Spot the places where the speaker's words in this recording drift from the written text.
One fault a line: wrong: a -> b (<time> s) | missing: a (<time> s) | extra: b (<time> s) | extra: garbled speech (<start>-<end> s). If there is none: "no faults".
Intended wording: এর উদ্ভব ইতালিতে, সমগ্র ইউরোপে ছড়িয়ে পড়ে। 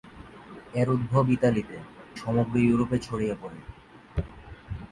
no faults